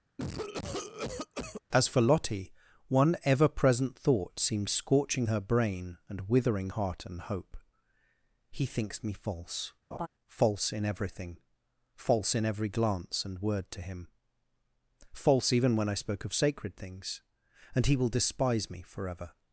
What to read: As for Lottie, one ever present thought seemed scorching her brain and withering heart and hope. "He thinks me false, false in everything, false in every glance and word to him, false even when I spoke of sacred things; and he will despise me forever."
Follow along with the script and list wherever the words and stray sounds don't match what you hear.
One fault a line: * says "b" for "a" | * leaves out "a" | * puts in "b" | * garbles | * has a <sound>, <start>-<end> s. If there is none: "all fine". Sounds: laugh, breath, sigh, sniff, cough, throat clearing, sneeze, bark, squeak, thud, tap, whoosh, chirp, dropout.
* has a cough, 0.2-1.6 s
* has a laugh, 9.9-10.1 s